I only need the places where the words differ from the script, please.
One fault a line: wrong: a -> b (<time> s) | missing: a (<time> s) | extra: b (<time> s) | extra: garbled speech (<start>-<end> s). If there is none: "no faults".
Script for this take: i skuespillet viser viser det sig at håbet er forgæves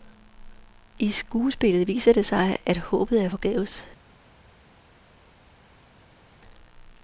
missing: viser (2.1 s)